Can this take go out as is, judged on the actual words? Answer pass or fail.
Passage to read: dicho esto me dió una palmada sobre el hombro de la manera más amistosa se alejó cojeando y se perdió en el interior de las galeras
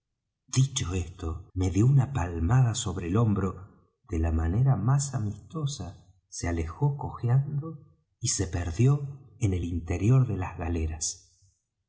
pass